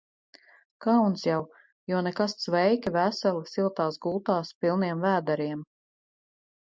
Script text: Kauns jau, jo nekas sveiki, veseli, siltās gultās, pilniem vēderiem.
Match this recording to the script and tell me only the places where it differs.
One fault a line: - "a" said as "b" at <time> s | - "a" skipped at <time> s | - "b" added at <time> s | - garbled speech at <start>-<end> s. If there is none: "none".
none